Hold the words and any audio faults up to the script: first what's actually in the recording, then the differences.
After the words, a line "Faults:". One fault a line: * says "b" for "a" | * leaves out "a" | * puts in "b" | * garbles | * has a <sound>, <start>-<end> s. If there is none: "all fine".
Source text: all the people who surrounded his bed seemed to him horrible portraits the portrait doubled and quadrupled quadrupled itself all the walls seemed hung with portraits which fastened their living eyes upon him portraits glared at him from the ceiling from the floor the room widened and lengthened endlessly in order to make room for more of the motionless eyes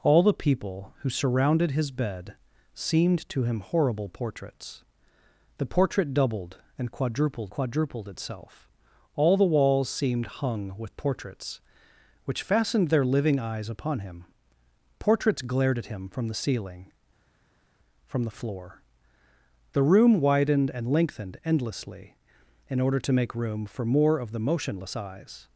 all the people who surrounded his bed seemed to him horrible portraits the portrait doubled and quadrupled quadrupled itself all the walls seemed hung with portraits which fastened their living eyes upon him portraits glared at him from the ceiling from the floor the room widened and lengthened endlessly in order to make room for more of the motionless eyes
Faults:
all fine